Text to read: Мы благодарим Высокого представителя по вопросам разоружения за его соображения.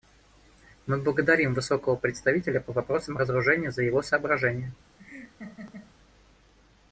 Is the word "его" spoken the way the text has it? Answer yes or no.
yes